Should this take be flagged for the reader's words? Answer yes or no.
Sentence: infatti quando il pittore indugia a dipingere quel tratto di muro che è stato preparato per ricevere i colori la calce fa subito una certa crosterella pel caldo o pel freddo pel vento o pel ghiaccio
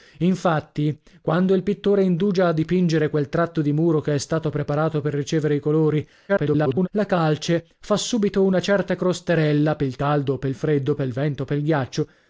yes